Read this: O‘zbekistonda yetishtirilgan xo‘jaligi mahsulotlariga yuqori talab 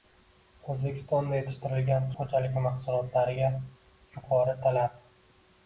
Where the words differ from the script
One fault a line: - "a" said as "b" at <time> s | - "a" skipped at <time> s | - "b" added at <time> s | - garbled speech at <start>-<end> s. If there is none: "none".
none